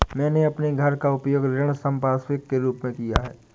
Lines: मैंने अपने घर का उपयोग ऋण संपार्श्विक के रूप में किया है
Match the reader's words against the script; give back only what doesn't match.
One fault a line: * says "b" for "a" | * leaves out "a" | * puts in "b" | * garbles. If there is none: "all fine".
all fine